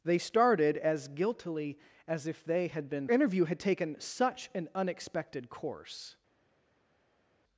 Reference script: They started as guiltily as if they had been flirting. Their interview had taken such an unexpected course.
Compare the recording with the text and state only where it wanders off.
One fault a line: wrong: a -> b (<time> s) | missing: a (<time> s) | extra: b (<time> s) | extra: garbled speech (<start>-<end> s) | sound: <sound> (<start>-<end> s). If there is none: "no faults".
missing: flirting Their (3.1 s)